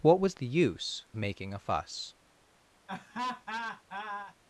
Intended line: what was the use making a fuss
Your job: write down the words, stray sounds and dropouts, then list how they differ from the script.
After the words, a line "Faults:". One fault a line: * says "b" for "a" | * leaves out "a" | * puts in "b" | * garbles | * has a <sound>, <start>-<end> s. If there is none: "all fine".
what was the use making a fuss
Faults:
* has a laugh, 2.9-4.3 s